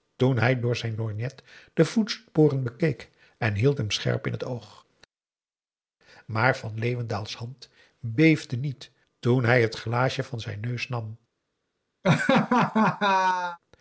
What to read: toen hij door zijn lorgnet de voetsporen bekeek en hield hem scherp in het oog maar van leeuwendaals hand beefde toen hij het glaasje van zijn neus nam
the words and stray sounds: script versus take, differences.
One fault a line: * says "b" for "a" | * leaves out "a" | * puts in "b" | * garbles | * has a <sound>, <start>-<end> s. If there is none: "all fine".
* puts in "niet"
* has a laugh, 12.0-13.6 s